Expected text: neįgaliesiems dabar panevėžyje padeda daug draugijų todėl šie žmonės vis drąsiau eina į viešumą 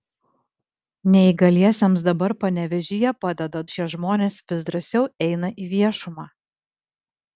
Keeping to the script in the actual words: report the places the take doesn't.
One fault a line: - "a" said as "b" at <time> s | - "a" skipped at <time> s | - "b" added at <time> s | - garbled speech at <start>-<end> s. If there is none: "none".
- "daug draugijų todėl" skipped at 3.6 s